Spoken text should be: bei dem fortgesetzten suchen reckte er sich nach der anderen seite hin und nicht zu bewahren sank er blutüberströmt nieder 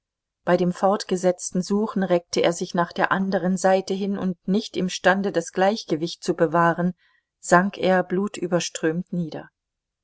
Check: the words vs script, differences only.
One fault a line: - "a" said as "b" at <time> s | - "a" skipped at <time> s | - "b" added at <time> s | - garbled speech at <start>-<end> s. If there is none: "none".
- "imstande das gleichgewicht" added at 4.8 s